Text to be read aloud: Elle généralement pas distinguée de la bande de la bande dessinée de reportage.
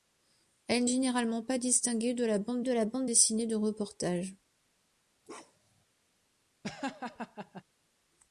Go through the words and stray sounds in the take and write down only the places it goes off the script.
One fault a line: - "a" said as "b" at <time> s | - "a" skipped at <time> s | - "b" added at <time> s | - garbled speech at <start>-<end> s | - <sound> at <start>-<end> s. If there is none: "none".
- bark at 5.3-5.9 s
- laugh at 6.6-7.6 s